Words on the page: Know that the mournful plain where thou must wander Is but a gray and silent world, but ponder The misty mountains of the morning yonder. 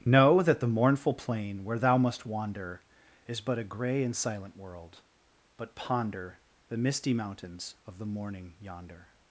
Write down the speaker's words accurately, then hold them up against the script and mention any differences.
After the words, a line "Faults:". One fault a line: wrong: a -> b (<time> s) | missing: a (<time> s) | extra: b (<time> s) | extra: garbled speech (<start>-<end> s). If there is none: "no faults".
Know that the mournful plain where thou must wander Is but a gray and silent world, but ponder The misty mountains of the morning yonder.
Faults:
no faults